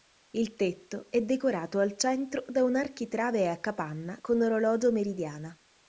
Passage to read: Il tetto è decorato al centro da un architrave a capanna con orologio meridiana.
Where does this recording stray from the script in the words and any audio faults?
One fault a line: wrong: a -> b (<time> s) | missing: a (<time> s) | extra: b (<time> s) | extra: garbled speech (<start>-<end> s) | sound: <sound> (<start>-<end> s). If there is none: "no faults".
no faults